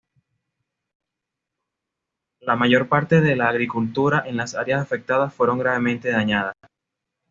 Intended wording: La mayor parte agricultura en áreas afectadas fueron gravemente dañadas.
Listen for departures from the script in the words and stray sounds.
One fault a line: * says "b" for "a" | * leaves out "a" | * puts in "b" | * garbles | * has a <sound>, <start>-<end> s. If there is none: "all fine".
* puts in "de la"
* puts in "las"